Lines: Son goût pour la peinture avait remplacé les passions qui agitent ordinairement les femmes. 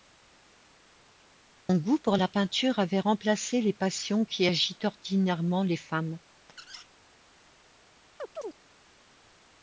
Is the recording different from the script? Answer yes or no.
no